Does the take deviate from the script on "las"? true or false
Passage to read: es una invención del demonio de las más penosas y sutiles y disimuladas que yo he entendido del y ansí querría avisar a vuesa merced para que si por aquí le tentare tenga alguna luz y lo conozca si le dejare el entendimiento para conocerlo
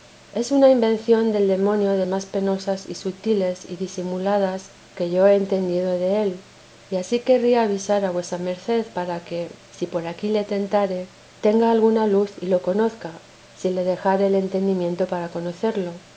true